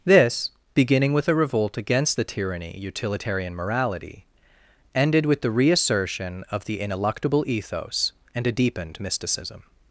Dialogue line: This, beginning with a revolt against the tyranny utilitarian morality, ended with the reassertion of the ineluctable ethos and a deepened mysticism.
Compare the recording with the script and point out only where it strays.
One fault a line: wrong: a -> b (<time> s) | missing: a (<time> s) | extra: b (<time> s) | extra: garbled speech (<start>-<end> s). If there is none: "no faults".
no faults